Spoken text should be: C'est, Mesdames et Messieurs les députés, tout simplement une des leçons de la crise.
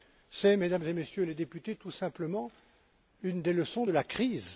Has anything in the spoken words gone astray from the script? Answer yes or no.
no